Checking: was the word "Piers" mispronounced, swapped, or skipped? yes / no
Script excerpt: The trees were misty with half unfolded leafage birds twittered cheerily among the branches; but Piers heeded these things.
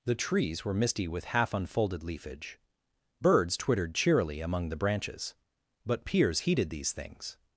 no